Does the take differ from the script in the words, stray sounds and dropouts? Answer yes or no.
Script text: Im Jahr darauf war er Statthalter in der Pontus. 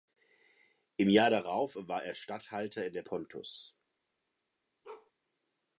yes